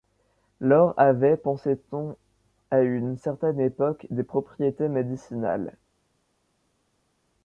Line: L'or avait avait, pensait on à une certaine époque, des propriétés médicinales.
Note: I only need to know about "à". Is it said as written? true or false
true